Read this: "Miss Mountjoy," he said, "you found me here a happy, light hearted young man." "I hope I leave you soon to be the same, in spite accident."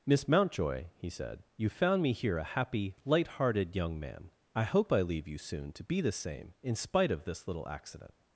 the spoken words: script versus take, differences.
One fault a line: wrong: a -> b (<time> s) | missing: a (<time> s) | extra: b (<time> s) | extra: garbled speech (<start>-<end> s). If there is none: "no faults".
extra: of this little (7.1 s)